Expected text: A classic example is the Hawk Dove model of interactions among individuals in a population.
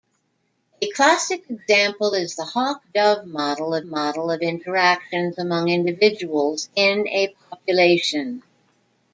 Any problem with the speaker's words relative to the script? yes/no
yes